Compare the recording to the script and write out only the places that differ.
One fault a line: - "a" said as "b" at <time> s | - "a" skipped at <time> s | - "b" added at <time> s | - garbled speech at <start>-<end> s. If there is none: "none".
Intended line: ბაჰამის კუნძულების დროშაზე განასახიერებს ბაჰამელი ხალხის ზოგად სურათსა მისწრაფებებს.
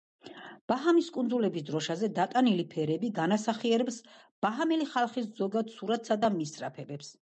- "დატანილი ფერები" added at 2.2 s
- "და" added at 6.3 s